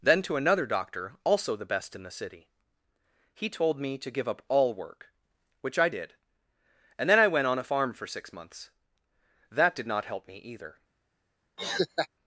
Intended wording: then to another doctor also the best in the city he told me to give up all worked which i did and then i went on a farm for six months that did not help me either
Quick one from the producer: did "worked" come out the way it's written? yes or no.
no